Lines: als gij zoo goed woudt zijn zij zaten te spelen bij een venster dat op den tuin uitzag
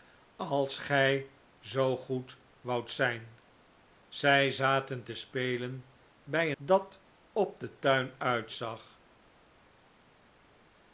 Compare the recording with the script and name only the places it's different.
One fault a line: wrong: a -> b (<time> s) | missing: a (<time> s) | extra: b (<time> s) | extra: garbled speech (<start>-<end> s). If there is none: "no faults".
missing: een venster (6.5 s)